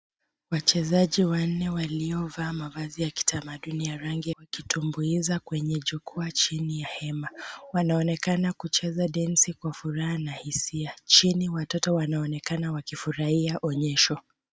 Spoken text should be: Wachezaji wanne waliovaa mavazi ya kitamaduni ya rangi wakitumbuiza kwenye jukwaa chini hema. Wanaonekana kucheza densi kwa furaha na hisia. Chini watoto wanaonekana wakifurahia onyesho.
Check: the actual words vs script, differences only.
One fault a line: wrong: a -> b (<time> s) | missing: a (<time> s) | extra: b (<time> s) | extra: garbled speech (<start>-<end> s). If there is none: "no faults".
no faults